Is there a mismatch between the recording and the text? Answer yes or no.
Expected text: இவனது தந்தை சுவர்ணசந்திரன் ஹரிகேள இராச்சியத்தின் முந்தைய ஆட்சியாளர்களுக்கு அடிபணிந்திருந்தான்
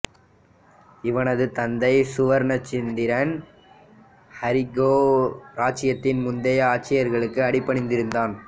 no